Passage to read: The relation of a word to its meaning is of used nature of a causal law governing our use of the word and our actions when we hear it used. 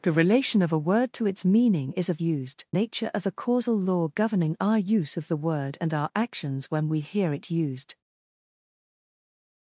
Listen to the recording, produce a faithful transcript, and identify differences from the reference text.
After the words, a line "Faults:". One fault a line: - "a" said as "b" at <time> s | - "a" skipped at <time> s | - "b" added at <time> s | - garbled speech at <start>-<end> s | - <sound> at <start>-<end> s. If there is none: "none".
The relation of a word to its meaning is of used nature of a causal law governing our use of the word and our actions when we hear it used.
Faults:
none